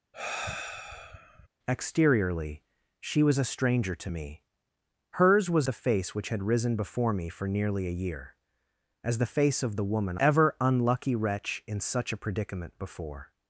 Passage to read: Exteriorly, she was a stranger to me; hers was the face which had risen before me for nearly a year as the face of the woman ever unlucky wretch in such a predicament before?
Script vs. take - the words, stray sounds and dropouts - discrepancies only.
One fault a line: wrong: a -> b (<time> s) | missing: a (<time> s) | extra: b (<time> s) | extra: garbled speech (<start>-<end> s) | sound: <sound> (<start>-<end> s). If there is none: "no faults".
sound: sigh (0.1-1.5 s)